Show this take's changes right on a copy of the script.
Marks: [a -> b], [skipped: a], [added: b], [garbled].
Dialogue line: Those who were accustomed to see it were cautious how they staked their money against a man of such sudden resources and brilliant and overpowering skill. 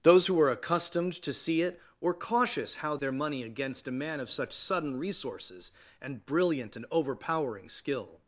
Those who were accustomed to see it were cautious how [skipped: they staked] their money against a man of such sudden resources and brilliant and overpowering skill.